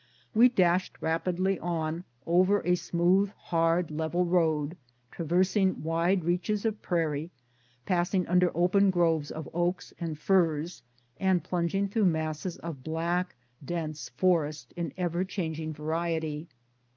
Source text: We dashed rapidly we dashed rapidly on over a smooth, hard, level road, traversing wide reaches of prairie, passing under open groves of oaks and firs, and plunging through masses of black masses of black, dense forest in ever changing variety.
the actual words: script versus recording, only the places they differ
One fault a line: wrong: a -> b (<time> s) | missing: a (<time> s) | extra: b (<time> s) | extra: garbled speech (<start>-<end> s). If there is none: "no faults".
missing: we dashed rapidly (1.6 s)
missing: masses of black (13.3 s)